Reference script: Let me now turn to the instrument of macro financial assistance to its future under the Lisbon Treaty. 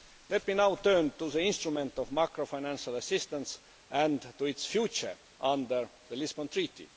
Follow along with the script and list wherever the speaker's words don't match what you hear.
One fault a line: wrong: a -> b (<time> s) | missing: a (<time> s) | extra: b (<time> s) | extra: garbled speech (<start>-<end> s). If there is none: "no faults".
extra: and (3.9 s)